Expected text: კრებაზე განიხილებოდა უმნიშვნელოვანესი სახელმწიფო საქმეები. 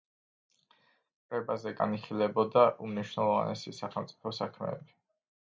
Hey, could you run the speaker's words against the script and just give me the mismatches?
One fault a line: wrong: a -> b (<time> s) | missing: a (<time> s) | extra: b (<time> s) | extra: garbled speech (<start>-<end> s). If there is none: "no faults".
no faults